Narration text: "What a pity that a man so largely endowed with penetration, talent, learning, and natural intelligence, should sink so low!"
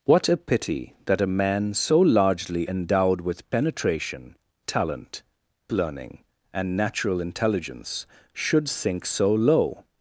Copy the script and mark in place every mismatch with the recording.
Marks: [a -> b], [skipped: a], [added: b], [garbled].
"What a pity that a man so largely endowed with penetration, talent, learning, and natural intelligence, should sink so low!"